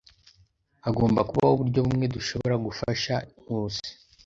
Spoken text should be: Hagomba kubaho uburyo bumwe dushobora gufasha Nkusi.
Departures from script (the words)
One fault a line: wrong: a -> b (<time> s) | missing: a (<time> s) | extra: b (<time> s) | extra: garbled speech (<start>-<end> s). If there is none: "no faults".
no faults